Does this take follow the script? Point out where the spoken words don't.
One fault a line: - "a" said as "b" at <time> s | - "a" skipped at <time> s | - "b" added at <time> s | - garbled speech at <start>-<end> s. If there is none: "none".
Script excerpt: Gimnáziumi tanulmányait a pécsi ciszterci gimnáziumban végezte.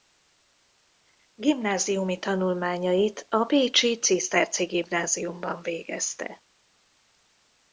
none